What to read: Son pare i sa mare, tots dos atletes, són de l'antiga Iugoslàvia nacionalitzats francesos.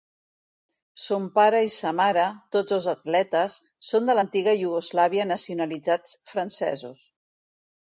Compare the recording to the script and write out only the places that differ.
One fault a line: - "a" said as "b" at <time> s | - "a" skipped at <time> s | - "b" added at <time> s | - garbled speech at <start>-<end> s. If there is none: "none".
none